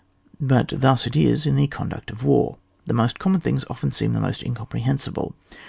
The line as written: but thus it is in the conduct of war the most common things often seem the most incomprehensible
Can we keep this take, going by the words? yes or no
yes